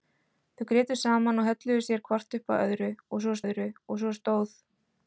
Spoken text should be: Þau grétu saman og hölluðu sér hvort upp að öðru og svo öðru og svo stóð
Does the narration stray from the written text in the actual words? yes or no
no